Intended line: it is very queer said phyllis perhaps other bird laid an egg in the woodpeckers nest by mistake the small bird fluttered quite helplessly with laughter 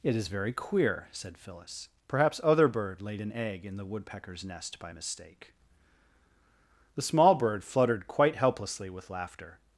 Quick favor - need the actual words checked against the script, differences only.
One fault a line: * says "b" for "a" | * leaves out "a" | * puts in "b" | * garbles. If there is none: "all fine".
all fine